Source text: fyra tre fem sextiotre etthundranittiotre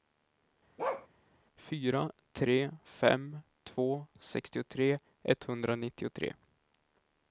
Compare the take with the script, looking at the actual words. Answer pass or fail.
fail